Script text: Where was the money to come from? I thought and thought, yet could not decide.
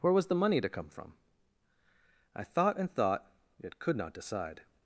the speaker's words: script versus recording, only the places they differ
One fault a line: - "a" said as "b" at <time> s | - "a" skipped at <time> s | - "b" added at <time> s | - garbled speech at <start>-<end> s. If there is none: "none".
none